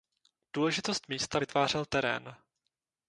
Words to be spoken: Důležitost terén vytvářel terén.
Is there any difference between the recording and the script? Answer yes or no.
yes